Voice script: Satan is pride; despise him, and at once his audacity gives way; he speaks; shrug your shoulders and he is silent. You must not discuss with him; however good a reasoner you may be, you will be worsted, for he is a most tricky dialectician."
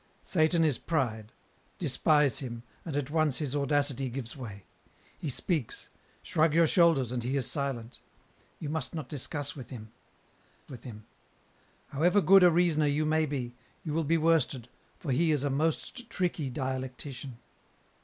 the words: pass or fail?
fail